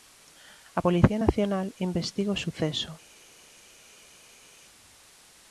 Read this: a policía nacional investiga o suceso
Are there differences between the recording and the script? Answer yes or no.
no